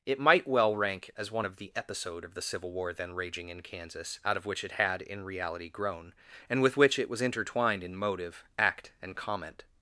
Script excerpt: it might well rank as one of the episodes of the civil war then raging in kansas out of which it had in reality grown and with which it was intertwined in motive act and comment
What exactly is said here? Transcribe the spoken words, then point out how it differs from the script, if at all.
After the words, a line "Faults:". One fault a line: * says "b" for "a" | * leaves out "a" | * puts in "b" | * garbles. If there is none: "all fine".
it might well rank as one of the episode of the civil war then raging in kansas out of which it had in reality grown and with which it was intertwined in motive act and comment
Faults:
* says "episode" for "episodes"